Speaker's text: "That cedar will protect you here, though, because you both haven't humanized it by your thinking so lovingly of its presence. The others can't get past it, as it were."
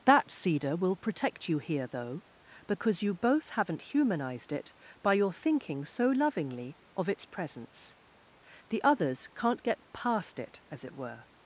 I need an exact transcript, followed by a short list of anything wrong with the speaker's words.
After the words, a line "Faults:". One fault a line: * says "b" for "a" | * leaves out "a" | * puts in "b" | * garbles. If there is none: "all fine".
"That cedar will protect you here, though, because you both haven't humanized it by your thinking so lovingly of its presence. The others can't get past it, as it were."
Faults:
all fine